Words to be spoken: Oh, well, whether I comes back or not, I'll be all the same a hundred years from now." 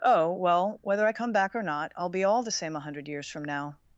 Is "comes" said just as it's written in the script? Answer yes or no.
no